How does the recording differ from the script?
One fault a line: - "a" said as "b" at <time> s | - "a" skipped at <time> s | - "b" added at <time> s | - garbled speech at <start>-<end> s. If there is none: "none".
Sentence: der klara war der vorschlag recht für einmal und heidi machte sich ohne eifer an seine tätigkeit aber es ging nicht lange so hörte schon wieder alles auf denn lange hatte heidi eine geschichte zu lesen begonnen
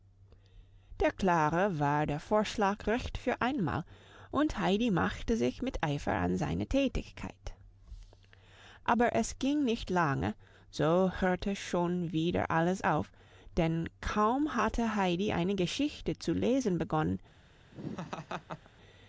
- "ohne" said as "mit" at 5.6 s
- "lange" said as "kaum" at 14.0 s